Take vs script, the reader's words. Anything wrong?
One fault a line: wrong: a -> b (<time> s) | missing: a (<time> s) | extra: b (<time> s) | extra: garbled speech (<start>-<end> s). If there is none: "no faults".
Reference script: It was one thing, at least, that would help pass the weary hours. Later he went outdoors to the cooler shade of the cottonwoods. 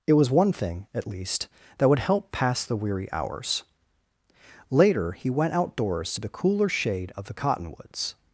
no faults